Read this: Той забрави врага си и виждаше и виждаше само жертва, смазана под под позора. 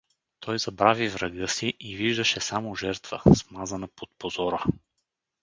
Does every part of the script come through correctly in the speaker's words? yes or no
no